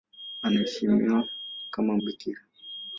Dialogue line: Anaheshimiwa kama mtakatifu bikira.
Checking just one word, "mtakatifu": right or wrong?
wrong